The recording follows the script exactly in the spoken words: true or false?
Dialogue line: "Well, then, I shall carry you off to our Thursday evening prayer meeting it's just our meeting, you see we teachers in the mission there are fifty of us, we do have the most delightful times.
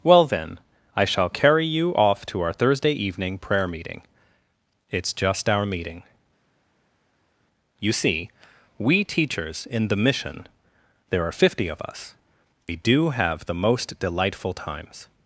true